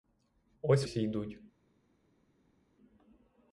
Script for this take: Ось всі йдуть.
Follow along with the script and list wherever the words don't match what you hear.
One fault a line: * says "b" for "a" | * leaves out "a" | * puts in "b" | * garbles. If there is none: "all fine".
all fine